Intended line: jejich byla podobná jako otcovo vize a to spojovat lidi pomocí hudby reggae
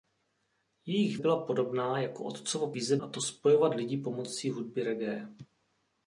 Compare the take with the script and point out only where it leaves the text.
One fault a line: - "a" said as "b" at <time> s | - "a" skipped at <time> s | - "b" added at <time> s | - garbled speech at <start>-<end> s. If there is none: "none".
none